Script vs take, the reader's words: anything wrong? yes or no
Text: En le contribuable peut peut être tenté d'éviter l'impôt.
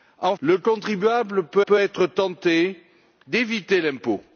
no